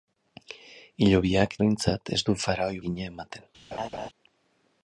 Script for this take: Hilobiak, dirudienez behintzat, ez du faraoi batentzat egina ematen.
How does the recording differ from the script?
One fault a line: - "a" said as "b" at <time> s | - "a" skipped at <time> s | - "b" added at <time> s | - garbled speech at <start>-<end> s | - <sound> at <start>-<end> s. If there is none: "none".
- "dirudienez" skipped at 1.5 s
- "batentzat" skipped at 2.8 s
- laugh at 3.7-4.1 s